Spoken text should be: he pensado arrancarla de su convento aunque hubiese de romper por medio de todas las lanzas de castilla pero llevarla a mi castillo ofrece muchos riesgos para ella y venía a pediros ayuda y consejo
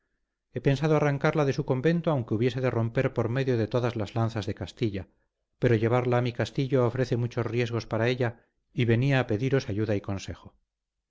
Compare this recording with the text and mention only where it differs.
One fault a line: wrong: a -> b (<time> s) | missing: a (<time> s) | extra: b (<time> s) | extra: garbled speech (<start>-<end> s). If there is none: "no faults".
no faults